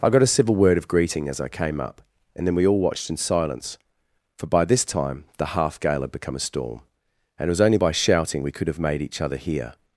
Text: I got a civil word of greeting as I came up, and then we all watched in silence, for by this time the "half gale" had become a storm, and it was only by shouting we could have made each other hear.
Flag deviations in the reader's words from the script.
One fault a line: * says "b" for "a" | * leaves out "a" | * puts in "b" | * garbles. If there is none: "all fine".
all fine